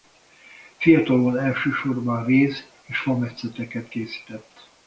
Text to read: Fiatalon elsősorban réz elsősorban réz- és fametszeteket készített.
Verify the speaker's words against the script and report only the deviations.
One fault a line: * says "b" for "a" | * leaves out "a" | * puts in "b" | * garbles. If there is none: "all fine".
* leaves out "elsősorban réz"